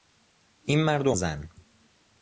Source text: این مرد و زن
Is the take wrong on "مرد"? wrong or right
right